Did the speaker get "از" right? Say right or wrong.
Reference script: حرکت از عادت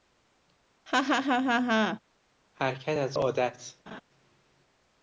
right